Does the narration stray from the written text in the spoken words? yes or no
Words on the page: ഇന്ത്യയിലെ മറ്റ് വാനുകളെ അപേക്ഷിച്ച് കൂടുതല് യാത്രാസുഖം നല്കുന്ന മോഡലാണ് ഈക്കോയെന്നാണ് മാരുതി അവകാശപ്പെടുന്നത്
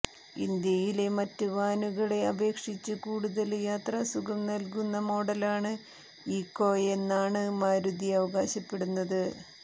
no